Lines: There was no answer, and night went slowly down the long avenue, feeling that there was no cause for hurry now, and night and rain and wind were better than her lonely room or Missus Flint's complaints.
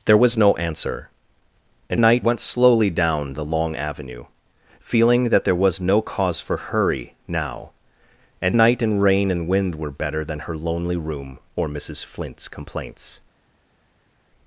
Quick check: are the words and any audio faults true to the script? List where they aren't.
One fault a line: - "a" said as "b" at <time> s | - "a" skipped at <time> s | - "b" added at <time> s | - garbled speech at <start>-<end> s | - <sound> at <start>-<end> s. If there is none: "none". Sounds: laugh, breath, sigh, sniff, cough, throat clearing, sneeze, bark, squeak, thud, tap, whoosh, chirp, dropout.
none